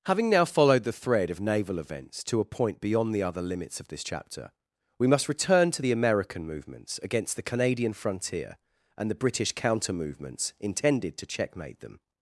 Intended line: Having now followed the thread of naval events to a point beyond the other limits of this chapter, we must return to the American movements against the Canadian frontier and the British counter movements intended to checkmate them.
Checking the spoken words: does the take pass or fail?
pass